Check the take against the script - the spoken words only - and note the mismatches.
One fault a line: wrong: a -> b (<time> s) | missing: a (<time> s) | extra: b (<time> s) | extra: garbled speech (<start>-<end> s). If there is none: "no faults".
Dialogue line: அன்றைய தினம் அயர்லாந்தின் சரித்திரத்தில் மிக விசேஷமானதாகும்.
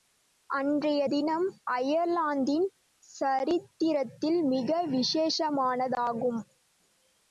no faults